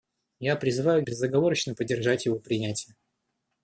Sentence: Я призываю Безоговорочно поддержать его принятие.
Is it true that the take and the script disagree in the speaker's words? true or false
false